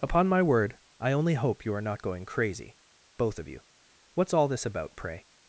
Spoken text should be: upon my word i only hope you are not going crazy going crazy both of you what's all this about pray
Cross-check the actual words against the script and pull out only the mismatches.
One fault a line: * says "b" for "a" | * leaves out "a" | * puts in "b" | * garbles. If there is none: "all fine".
* leaves out "going crazy"